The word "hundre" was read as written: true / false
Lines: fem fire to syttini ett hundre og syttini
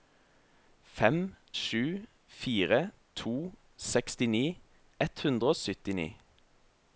true